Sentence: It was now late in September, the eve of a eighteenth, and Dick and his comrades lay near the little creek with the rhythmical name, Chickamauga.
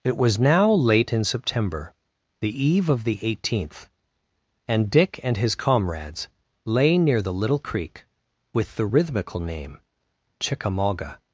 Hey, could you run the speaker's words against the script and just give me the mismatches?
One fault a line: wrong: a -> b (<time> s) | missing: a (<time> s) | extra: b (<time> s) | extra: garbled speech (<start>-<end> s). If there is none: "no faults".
wrong: a -> the (3.0 s)